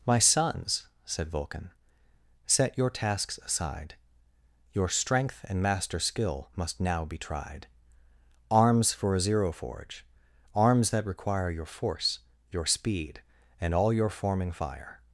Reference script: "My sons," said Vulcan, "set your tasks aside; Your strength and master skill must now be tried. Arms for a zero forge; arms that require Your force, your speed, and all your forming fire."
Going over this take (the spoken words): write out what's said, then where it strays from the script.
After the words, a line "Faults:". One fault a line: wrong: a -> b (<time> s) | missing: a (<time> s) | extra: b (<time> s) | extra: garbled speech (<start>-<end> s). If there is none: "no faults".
"My sons," said Vulcan, "set your tasks aside; Your strength and master skill must now be tried. Arms for a zero forge; arms that require Your force, your speed, and all your forming fire."
Faults:
no faults